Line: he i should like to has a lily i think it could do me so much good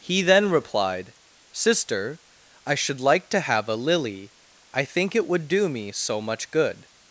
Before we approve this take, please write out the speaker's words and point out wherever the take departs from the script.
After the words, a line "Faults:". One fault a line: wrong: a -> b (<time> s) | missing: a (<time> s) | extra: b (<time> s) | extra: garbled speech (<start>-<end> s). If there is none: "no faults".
he then replied sister i should like to have a lily i think it would do me so much good
Faults:
extra: then replied sister (0.2 s)
wrong: has -> have (3.4 s)
wrong: could -> would (5.3 s)